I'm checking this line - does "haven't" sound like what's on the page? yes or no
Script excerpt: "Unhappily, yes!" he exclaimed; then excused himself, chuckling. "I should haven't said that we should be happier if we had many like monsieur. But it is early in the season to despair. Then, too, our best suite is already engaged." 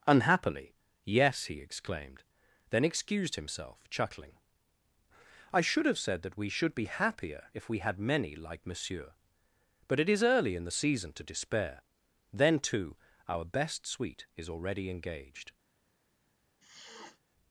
no